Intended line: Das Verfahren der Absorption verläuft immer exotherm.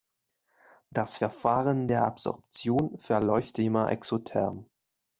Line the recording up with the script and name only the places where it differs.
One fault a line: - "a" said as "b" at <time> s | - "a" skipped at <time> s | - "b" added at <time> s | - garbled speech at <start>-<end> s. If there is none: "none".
none